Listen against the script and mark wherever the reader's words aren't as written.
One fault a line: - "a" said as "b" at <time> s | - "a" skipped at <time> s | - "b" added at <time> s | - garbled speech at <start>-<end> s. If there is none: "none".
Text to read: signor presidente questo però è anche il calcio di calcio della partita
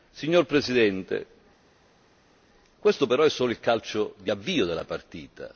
- "anche" said as "solo" at 3.3 s
- "calcio" said as "avvio" at 4.3 s